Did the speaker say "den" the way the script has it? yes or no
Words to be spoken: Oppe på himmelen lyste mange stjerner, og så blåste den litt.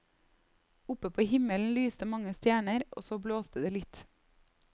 no